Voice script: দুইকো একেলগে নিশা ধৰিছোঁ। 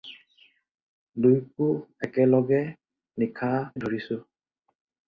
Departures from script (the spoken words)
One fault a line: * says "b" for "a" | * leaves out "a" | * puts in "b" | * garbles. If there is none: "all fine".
all fine